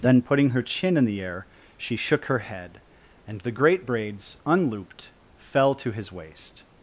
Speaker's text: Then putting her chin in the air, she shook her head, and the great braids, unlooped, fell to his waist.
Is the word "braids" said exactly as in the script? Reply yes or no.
yes